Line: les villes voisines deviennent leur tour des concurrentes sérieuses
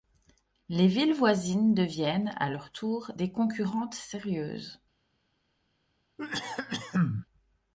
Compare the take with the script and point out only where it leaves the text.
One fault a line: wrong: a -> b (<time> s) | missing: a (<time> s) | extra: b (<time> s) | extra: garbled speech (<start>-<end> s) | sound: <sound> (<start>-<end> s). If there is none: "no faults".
extra: à (2.4 s)
sound: cough (6.2-7.3 s)